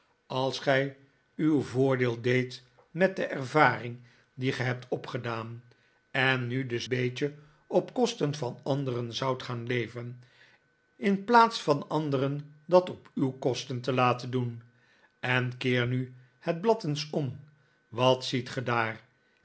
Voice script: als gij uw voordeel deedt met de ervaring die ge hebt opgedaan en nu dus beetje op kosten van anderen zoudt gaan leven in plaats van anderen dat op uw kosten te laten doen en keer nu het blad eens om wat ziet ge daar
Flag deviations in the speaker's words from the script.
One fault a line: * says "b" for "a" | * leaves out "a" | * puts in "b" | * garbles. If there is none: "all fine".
all fine